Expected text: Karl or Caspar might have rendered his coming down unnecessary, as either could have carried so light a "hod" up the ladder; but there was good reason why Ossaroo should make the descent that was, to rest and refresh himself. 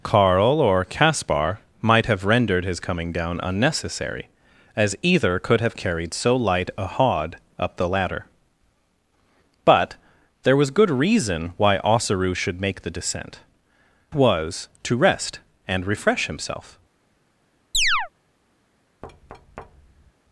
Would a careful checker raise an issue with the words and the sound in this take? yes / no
yes